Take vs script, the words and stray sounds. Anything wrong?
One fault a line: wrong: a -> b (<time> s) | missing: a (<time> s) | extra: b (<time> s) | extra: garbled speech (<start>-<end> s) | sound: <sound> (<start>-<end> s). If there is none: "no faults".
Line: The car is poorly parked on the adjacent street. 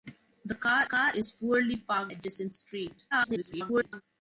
extra: car (0.8 s)
missing: on the (2.1 s)
extra: garbled speech (3.1-4.0 s)